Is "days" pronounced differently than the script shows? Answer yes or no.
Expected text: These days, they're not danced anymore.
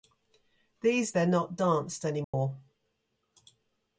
yes